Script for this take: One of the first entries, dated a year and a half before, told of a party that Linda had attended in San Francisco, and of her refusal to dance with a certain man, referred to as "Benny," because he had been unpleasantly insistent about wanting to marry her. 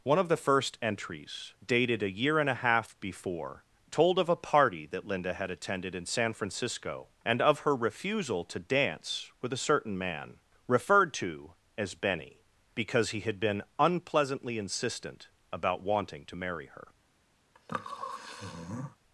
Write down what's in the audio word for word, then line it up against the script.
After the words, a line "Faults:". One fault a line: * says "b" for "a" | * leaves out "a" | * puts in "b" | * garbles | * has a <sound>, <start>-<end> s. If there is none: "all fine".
One of the first entries, dated a year and a half before, told of a party that Linda had attended in San Francisco, and of her refusal to dance with a certain man, referred to as "Benny," because he had been unpleasantly insistent about wanting to marry her.
Faults:
* has a sniff, 17.5-19.0 s